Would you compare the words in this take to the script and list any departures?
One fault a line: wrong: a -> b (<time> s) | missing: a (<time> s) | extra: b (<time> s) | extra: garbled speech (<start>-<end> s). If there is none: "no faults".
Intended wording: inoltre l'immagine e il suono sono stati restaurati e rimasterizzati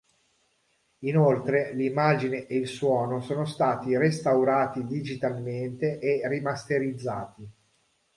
extra: digitalmente (4.8 s)